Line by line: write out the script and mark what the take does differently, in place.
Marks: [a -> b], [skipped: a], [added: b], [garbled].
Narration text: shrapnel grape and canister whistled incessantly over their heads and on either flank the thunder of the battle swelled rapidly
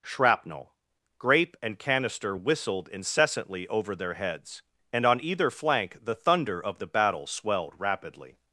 shrapnel grape and canister whistled incessantly over their heads and on either flank the thunder of the battle swelled rapidly